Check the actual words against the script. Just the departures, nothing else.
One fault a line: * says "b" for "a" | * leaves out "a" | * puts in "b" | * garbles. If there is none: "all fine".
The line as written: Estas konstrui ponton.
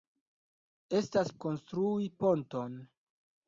all fine